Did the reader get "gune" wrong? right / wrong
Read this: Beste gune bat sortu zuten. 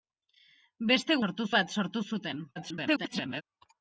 wrong